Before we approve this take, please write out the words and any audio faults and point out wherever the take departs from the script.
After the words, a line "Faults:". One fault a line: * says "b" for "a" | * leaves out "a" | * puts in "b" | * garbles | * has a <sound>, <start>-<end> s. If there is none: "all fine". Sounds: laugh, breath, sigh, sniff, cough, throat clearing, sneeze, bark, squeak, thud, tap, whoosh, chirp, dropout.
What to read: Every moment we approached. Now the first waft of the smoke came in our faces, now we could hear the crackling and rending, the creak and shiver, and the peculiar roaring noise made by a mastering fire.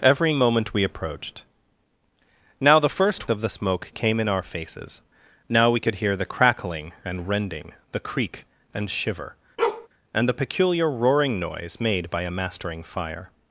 Every moment we approached. Now the first of the smoke came in our faces, now we could hear the crackling and rending, the creak and shiver, and the peculiar roaring noise made by a mastering fire.
Faults:
* leaves out "waft"
* has a bark, 9.6-9.9 s